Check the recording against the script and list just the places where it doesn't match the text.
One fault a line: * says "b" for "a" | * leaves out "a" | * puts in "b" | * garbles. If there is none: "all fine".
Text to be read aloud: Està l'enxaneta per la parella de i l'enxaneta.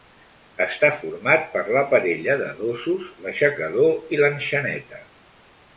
* says "format" for "l'enxaneta"
* puts in "dosos l'aixecador"